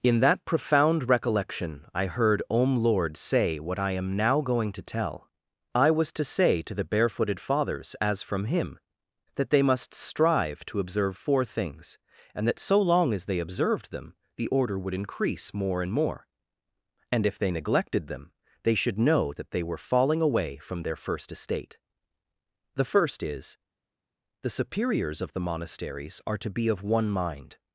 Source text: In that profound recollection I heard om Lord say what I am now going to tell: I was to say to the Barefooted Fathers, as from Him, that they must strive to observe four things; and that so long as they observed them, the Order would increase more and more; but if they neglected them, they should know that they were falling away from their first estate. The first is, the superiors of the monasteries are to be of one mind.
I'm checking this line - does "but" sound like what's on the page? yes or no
no